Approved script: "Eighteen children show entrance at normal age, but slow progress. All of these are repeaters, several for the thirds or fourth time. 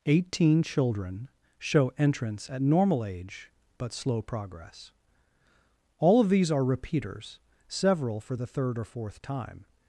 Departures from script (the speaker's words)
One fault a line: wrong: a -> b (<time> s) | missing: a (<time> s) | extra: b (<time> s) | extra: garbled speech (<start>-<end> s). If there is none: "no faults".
wrong: thirds -> third (8.5 s)